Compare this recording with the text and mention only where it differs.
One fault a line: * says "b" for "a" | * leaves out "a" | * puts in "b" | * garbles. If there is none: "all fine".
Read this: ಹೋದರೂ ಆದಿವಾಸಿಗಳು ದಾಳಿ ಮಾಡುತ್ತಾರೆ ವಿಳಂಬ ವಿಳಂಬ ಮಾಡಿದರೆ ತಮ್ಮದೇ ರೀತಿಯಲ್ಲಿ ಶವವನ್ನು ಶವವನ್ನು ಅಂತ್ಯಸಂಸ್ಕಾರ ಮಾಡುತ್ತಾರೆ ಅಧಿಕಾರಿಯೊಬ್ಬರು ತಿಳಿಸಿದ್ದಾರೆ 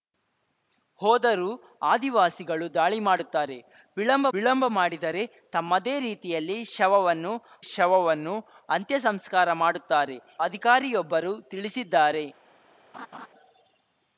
all fine